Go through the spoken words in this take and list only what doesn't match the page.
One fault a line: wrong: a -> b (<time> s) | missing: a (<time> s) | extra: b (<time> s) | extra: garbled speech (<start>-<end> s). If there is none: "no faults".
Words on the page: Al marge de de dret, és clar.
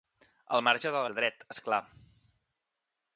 no faults